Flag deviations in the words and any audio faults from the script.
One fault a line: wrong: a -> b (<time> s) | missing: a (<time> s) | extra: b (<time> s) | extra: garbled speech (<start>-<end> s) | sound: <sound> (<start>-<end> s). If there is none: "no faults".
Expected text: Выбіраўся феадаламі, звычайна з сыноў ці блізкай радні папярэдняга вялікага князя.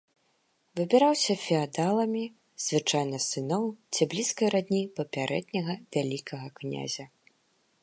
no faults